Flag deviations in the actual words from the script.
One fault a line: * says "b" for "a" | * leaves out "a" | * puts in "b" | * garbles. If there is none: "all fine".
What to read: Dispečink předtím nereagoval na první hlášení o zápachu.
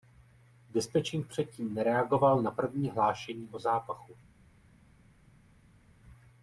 all fine